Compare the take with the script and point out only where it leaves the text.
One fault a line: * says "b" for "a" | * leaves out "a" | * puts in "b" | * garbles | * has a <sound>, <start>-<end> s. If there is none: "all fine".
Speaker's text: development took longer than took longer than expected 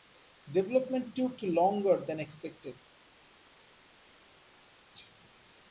* leaves out "took longer than"